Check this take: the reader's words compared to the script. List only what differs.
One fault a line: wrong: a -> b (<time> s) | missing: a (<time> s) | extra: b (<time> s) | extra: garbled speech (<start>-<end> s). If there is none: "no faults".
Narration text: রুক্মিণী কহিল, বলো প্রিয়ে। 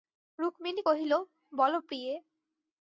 no faults